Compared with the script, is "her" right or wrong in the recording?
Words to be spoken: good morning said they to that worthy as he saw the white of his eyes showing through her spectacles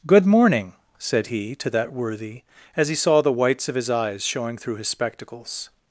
wrong